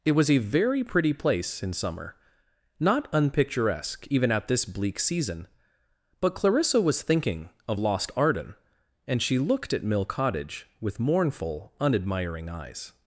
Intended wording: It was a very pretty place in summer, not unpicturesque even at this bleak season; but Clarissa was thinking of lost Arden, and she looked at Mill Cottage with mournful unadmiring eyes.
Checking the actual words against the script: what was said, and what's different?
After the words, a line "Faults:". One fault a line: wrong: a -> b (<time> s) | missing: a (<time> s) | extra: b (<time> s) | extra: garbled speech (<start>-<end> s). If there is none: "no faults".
It was a very pretty place in summer, not unpicturesque even at this bleak season; but Clarissa was thinking of lost Arden, and she looked at Mill Cottage with mournful unadmiring eyes.
Faults:
no faults